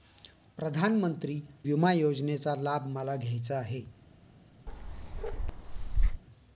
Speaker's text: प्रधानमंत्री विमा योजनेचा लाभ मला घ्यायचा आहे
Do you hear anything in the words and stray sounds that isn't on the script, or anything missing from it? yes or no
yes